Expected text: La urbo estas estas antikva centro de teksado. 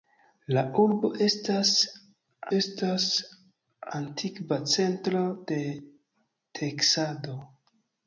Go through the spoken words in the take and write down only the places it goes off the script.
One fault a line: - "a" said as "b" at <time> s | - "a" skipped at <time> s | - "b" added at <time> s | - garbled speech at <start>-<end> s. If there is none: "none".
none